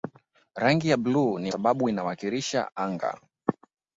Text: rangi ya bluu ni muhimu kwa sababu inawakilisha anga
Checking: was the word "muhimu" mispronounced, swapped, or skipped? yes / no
yes